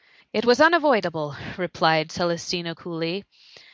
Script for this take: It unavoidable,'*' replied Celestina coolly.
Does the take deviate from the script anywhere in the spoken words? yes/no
yes